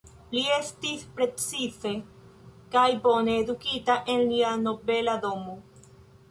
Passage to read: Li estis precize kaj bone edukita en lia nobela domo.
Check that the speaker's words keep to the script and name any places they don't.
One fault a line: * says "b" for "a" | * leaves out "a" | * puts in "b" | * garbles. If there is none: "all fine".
all fine